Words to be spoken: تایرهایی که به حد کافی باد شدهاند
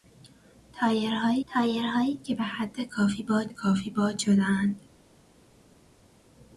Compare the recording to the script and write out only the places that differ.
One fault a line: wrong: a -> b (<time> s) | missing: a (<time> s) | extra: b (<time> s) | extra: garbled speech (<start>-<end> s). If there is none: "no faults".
extra: تایرهایی (1.5 s)
extra: کافی باد (3.5 s)